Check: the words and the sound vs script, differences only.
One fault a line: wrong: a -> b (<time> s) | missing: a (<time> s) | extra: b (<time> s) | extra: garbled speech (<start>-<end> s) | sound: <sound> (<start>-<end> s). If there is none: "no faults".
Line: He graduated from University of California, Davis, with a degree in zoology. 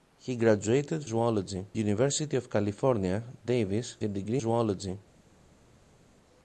wrong: from -> zoology (1.0 s)
missing: with (4.0 s)
missing: in (4.4 s)